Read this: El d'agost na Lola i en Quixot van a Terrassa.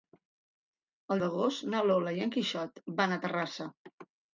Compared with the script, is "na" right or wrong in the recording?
right